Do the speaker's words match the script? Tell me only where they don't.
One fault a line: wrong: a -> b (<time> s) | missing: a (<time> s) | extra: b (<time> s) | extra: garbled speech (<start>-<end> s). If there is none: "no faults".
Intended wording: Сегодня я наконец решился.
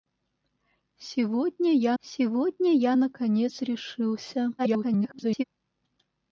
extra: сегодня я (2.0 s)
extra: garbled speech (4.6-5.4 s)